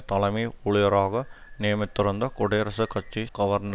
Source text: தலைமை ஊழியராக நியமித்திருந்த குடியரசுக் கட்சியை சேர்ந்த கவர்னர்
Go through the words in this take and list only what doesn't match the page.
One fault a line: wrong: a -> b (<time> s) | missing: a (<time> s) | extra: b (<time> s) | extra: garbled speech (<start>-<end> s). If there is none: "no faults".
missing: சேர்ந்த (3.3 s)